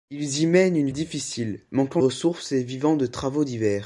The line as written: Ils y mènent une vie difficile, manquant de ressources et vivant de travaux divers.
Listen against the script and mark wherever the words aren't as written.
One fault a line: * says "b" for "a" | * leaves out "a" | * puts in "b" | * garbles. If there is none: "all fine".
* leaves out "vie"
* leaves out "de"